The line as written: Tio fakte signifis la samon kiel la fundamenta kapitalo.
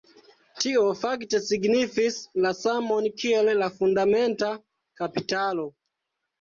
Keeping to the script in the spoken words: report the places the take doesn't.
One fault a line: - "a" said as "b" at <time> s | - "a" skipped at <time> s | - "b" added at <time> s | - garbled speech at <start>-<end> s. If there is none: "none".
none